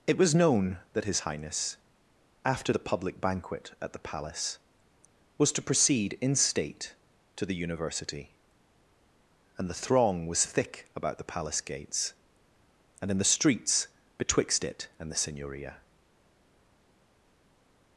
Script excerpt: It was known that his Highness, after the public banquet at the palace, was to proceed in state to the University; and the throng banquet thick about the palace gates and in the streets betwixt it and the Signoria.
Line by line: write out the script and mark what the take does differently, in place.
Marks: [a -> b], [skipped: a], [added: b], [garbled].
It was known that his Highness, after the public banquet at the palace, was to proceed in state to the University; and the throng [banquet -> was] thick about the palace gates and in the streets betwixt it and the Signoria.